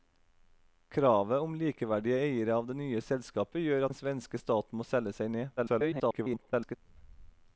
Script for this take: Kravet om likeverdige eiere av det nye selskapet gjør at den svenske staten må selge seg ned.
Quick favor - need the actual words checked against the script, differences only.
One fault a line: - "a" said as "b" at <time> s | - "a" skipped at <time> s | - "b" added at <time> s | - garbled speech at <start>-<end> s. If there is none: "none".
- "at" skipped at 3.9 s
- garbled speech at 5.6-6.8 s